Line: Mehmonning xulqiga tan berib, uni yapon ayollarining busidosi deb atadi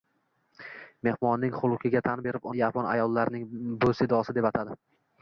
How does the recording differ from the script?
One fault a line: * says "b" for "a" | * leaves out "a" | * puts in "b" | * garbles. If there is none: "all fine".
* leaves out "uni"